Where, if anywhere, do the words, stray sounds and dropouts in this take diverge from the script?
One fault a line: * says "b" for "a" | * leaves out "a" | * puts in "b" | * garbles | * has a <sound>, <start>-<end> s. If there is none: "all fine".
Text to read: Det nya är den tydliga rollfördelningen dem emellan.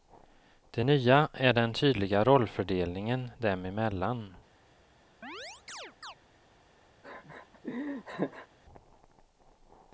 * has a chirp, 5.2-6.2 s
* has a laugh, 7.0-8.5 s